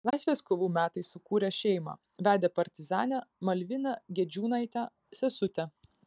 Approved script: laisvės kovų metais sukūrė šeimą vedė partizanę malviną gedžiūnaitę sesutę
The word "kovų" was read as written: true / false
true